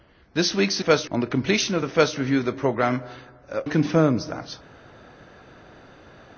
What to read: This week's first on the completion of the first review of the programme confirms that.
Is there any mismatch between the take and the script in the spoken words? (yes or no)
no